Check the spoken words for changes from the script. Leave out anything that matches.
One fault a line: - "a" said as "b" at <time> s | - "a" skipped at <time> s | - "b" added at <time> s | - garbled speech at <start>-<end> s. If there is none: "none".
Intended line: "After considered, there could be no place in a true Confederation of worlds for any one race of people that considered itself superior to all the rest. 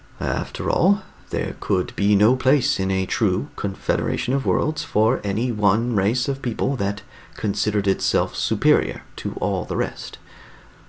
- "considered" said as "all" at 0.7 s